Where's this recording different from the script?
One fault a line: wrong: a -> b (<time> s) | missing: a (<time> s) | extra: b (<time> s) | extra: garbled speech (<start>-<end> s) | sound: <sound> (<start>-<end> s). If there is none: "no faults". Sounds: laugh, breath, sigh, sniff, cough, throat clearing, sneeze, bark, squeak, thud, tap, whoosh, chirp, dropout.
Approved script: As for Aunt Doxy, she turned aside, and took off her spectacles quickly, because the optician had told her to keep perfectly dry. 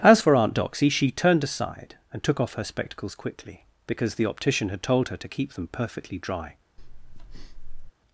extra: them (5.5 s)
sound: breath (6.8-7.9 s)